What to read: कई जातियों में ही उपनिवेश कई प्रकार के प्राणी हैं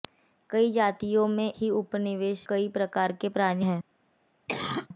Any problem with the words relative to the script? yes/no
no